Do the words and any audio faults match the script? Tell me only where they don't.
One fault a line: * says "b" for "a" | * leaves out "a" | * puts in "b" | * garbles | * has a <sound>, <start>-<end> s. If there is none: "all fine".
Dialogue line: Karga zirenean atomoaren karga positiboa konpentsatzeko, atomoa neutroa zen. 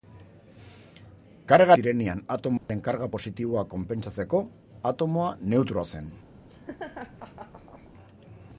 * has a dropout, 2.6-2.7 s
* has a laugh, 6.5-7.9 s